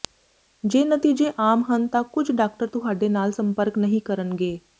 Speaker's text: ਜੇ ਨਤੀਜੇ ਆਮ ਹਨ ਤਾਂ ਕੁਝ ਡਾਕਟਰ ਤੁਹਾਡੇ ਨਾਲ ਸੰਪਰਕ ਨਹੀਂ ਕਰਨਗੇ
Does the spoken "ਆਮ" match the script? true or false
true